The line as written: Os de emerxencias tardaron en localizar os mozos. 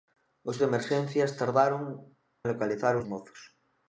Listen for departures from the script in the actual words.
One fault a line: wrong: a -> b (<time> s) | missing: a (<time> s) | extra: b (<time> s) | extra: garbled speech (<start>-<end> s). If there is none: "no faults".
no faults